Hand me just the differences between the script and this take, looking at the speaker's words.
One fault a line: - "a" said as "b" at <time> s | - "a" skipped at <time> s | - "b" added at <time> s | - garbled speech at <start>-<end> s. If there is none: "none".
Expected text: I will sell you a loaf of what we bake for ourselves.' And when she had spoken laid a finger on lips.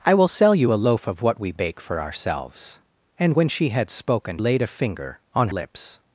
none